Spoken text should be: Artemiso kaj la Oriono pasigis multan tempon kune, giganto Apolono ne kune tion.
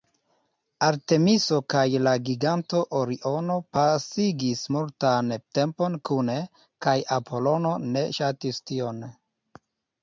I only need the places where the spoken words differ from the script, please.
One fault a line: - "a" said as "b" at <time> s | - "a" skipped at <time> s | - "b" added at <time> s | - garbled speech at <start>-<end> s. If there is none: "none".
- "giganto" added at 2.3 s
- "giganto" said as "kaj" at 6.9 s
- "kune" said as "ŝatis" at 8.2 s